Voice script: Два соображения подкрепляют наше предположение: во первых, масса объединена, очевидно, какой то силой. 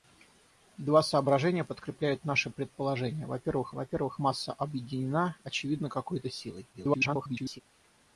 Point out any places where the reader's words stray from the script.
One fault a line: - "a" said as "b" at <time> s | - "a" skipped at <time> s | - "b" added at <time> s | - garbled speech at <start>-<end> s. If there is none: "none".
- "во первых" added at 3.7 s
- garbled speech at 6.7-7.6 s